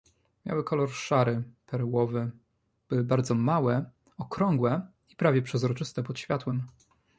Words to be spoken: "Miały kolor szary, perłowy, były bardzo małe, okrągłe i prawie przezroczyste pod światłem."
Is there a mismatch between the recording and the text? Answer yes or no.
no